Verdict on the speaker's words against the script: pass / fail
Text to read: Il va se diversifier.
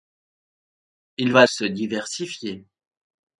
pass